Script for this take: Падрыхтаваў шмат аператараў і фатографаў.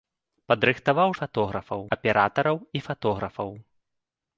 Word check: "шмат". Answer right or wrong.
wrong